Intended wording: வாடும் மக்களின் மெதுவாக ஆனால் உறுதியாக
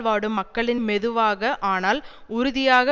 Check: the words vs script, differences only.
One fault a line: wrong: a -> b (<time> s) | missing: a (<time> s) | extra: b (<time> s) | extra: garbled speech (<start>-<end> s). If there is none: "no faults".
no faults